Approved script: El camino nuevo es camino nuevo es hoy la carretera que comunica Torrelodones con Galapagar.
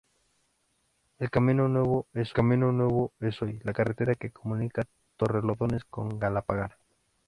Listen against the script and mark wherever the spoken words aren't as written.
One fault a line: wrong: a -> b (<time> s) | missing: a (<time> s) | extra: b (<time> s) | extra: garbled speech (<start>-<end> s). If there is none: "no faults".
no faults